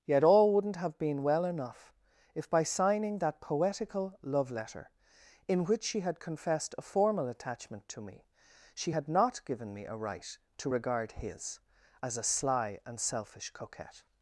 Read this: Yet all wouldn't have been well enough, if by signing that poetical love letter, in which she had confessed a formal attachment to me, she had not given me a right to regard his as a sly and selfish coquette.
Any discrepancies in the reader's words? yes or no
no